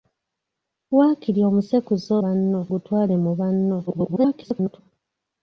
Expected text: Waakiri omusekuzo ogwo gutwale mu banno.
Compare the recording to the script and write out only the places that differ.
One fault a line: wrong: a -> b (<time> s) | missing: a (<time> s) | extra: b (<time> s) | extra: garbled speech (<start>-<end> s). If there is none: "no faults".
wrong: ogwo -> banno (2.2 s)
extra: garbled speech (3.9-4.8 s)